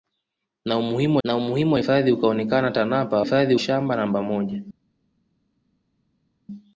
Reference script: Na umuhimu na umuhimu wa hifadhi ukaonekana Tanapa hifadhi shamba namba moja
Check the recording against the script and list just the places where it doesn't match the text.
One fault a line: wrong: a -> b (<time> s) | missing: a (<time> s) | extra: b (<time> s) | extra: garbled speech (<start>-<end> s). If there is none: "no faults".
no faults